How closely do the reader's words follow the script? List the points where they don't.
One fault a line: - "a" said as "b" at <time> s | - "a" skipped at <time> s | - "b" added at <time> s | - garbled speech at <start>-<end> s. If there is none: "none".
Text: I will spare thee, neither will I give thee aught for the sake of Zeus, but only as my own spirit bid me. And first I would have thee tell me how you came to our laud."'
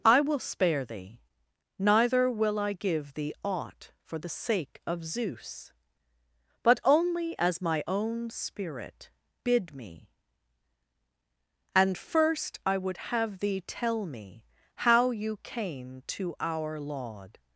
none